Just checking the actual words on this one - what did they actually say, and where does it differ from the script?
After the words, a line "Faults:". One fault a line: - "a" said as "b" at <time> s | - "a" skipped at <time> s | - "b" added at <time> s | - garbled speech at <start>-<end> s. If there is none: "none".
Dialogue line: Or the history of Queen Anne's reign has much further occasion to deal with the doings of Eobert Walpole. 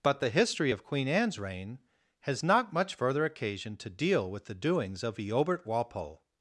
But the history of Queen Anne's reign has not much further occasion to deal with the doings of Eobert Walpole.
Faults:
- "Or" said as "But" at 0.0 s
- "not" added at 2.4 s